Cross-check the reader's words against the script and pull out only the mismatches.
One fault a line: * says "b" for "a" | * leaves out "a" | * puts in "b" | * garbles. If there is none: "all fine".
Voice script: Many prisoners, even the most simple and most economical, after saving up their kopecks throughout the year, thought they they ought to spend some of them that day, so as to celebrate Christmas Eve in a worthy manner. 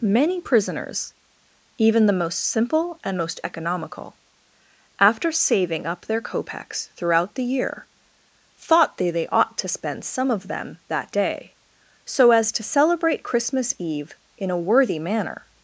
all fine